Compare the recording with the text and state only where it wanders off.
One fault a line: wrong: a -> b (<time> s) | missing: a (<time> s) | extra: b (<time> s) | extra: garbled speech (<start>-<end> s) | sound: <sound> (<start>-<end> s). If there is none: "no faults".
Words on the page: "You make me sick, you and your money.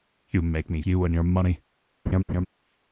missing: sick (0.8 s)
sound: laugh (2.1-2.5 s)